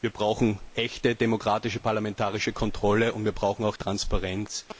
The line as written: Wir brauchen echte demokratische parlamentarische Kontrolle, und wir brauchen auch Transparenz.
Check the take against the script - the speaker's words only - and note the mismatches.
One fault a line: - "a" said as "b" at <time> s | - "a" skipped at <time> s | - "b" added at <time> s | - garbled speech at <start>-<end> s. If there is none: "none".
none